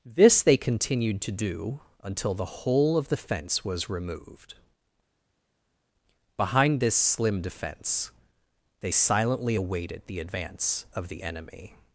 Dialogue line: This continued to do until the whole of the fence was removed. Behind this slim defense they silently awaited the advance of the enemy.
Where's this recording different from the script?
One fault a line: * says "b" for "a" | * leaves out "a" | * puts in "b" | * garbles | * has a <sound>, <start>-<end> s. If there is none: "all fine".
* puts in "they"